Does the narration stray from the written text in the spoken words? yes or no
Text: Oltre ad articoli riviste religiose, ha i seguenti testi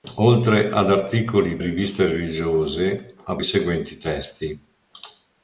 no